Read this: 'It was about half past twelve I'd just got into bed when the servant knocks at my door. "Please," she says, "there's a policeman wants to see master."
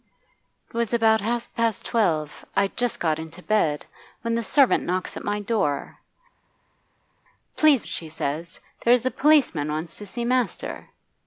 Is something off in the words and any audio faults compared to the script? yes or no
no